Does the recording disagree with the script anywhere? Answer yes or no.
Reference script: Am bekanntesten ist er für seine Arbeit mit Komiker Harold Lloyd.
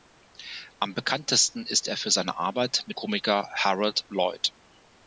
no